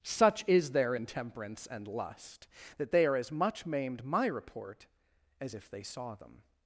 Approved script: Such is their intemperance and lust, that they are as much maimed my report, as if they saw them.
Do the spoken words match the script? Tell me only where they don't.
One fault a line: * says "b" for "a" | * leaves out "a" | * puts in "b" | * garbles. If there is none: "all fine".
all fine